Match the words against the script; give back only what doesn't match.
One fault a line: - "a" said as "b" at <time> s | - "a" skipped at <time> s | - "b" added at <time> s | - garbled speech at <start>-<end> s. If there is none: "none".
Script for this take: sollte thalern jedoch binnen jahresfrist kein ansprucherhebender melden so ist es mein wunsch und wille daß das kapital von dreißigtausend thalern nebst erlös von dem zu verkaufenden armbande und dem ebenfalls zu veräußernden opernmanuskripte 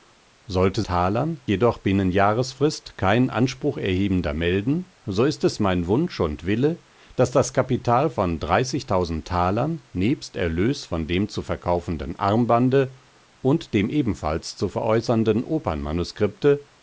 none